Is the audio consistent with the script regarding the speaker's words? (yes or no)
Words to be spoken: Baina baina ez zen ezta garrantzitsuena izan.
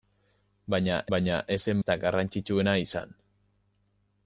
yes